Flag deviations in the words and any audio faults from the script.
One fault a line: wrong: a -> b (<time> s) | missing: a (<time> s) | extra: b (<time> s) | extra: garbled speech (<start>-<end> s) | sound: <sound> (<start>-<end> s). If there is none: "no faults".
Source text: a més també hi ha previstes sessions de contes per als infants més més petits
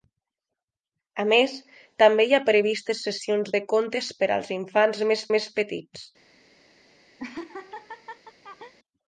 sound: laugh (7.2-8.7 s)